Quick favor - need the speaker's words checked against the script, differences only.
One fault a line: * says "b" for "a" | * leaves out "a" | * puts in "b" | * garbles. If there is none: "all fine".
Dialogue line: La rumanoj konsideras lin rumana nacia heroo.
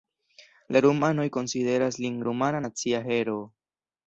all fine